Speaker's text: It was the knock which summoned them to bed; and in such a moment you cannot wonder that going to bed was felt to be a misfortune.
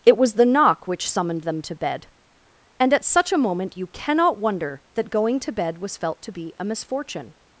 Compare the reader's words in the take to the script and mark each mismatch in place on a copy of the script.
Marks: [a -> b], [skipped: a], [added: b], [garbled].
It was the knock which summoned them to bed; and [in -> at] such a moment you cannot wonder that going to bed was felt to be a misfortune.